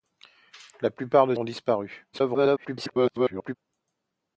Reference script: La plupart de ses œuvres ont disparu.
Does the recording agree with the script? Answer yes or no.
no